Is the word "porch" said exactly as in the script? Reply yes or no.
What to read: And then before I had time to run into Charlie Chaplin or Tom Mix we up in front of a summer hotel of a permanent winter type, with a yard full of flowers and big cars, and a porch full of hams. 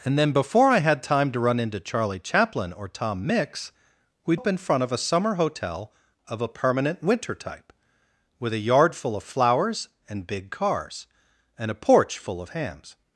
yes